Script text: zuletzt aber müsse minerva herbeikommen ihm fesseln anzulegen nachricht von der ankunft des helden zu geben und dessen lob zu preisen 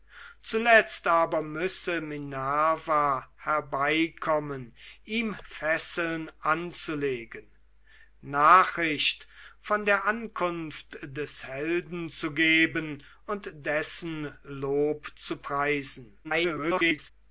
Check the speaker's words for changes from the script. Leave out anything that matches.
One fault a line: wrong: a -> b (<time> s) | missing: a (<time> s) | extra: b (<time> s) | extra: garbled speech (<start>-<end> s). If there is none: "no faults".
extra: garbled speech (16.2-17.1 s)